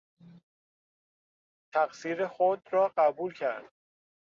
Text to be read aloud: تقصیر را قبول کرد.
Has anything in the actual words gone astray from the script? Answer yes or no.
yes